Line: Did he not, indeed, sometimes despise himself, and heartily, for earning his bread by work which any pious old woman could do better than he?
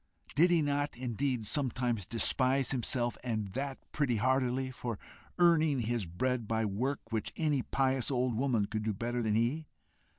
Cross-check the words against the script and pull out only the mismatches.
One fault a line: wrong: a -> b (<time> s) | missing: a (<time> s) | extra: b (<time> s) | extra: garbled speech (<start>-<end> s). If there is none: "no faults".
extra: that pretty (3.5 s)